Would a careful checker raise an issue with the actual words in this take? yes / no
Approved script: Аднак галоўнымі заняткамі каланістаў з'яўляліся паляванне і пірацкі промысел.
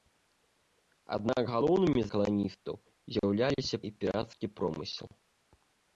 yes